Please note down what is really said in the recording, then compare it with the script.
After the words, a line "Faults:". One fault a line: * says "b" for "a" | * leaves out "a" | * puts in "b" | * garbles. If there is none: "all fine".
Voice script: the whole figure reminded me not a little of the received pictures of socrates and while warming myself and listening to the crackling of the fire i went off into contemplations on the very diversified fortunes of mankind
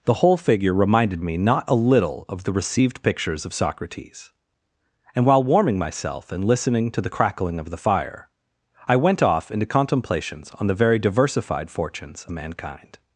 the whole figure reminded me not a little of the received pictures of socrates and while warming myself and listening to the crackling of the fire i went off into contemplations on the very diversified fortunes mankind
Faults:
* leaves out "of"